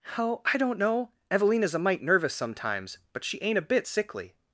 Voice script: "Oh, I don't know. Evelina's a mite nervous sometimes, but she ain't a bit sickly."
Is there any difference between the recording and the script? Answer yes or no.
no